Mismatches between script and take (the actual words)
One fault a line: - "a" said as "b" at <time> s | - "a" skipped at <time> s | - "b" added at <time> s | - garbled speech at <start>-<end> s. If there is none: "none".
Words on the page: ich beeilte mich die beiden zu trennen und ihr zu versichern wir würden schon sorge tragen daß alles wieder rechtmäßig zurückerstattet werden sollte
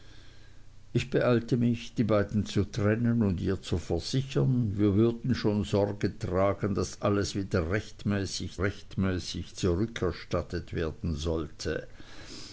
- "rechtmäßig" added at 8.6 s